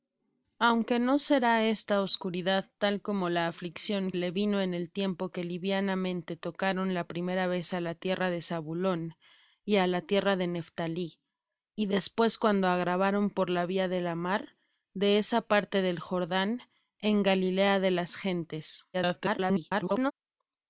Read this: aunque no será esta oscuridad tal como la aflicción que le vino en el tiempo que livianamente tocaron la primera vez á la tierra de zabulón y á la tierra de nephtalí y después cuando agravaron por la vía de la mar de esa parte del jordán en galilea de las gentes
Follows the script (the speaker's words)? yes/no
no